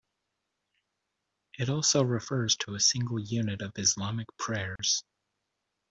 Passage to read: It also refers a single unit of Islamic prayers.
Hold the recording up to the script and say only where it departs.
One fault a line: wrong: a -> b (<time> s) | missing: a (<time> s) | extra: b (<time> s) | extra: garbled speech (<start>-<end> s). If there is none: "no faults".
extra: to (2.6 s)